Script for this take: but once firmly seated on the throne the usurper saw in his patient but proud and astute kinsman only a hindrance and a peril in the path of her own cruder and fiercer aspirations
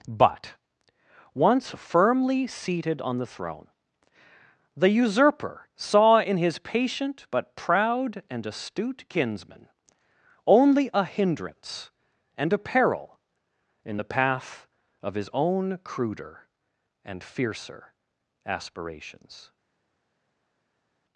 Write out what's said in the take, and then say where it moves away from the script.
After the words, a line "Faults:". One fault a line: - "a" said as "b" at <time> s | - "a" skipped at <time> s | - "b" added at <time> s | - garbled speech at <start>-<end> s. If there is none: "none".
but once firmly seated on the throne the usurper saw in his patient but proud and astute kinsman only a hindrance and a peril in the path of his own cruder and fiercer aspirations
Faults:
- "her" said as "his" at 15.1 s